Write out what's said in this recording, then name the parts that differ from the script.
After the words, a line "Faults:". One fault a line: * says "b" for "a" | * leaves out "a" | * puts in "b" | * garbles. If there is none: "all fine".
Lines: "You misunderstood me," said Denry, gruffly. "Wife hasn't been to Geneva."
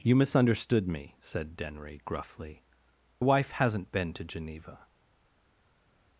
"You misunderstood me," said Denry, gruffly. "Wife hasn't been to Geneva."
Faults:
all fine